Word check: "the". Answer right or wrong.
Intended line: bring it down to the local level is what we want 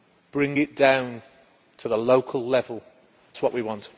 right